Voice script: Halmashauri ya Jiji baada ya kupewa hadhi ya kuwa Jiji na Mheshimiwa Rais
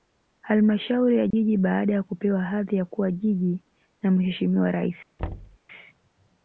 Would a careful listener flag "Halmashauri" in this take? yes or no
no